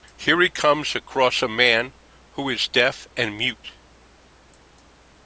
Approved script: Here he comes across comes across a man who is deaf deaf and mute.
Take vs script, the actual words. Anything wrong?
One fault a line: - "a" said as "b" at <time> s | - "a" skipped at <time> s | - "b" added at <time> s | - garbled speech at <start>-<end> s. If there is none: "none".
- "comes across" skipped at 1.4 s
- "deaf" skipped at 3.1 s